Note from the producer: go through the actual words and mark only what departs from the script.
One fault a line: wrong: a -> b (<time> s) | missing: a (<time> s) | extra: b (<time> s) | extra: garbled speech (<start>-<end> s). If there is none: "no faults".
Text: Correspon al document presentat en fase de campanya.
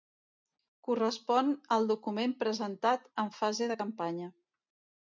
no faults